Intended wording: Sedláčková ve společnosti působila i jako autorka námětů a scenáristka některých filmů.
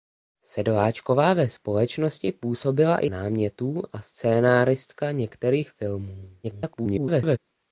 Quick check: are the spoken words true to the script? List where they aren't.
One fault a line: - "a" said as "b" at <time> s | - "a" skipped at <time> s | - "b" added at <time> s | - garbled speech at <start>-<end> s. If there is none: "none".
- "jako autorka" skipped at 3.1 s
- garbled speech at 6.4-7.4 s